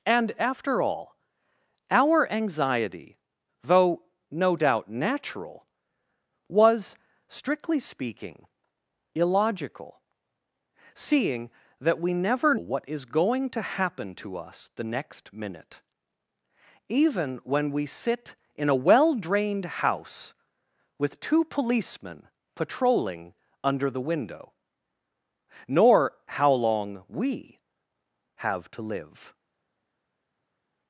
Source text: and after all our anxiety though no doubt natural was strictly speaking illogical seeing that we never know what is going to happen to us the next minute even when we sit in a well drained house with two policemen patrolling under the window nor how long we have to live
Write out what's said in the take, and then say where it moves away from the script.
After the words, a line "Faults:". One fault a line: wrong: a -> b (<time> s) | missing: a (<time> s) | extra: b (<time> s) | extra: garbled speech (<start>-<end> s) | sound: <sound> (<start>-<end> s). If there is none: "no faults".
and after all our anxiety though no doubt natural was strictly speaking illogical seeing that we never what is going to happen to us the next minute even when we sit in a well drained house with two policemen patrolling under the window nor how long we have to live
Faults:
missing: know (12.6 s)